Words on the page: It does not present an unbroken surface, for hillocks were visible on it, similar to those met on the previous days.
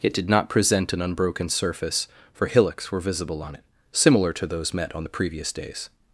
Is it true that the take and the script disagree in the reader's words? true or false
true